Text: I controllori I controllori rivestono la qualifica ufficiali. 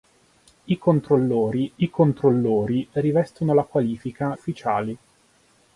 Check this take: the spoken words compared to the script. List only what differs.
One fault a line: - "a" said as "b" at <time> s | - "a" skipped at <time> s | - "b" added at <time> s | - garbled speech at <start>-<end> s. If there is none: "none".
none